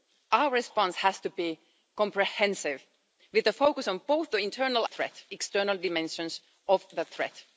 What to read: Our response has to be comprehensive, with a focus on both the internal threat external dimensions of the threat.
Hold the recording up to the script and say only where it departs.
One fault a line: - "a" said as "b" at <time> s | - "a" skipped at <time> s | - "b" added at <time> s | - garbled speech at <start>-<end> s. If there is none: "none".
none